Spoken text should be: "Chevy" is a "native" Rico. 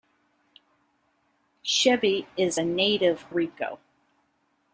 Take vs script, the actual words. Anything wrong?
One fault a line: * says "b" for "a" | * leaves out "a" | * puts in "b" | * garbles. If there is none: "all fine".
all fine